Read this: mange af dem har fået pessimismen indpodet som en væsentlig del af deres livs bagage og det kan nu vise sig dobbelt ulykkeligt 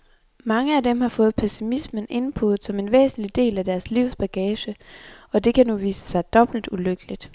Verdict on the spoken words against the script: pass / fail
pass